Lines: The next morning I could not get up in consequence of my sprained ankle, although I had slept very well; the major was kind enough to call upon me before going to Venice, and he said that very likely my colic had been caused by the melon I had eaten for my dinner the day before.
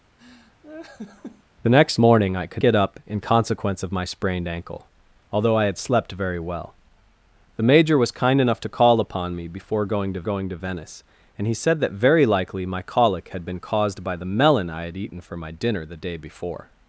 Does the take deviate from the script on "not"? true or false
true